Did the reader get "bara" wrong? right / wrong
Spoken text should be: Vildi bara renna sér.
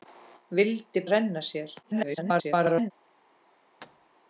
wrong